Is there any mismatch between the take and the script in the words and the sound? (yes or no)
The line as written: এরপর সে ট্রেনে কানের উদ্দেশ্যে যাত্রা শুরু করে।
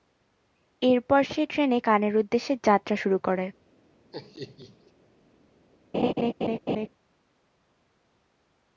yes